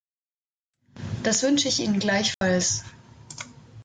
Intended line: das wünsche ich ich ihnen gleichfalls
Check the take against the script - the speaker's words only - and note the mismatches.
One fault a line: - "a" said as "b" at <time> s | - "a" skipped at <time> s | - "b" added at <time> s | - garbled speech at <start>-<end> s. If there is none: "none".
- "ich" skipped at 1.8 s